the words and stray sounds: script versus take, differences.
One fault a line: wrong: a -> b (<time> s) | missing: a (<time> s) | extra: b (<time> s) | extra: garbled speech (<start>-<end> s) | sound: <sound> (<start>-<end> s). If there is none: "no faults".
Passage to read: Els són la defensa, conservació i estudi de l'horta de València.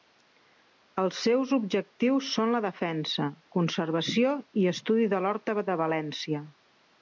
extra: seus objectius (1.2 s)